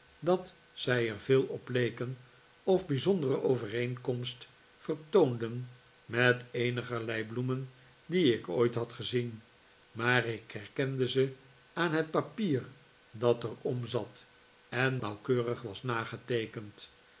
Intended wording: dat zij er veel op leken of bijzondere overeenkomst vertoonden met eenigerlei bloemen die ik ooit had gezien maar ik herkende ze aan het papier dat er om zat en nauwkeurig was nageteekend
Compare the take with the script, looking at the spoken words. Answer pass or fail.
pass